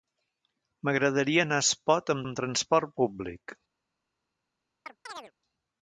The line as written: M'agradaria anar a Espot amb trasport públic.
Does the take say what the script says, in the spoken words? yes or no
no